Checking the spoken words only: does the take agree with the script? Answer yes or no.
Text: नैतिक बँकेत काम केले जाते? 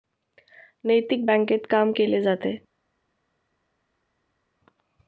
yes